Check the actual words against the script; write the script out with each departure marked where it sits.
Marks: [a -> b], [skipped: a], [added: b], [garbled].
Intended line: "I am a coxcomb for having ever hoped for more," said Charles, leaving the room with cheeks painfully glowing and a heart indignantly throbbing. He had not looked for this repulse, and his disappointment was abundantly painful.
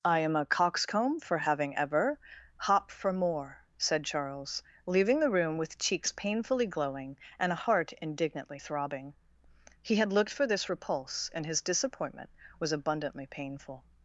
"I am a coxcomb for having ever [hoped -> hop] for more," said Charles, leaving the room with cheeks painfully glowing and a heart indignantly throbbing. He had [skipped: not] looked for this repulse, and his disappointment was abundantly painful.